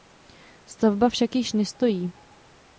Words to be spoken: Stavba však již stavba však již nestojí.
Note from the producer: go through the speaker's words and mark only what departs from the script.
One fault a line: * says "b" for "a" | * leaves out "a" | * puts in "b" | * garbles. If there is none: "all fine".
* leaves out "stavba však již"